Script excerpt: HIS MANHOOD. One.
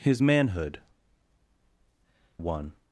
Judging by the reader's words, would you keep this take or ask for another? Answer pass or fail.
pass